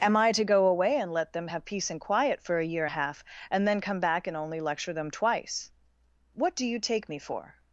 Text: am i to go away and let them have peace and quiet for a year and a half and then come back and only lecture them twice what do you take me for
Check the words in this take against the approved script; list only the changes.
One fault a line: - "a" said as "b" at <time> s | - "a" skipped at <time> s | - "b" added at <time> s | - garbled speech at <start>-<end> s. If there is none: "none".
- "and" skipped at 2.9 s